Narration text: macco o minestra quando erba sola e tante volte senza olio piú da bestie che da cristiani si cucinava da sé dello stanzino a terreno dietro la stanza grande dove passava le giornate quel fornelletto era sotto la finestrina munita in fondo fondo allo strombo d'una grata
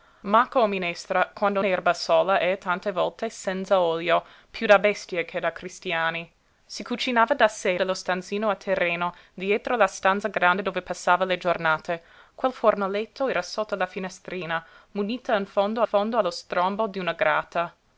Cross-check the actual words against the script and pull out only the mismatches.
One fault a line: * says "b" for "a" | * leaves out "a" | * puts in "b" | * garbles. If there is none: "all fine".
all fine